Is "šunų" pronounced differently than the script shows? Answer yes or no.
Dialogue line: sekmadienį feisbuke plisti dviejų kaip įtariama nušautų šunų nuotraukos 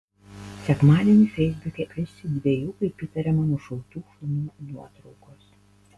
no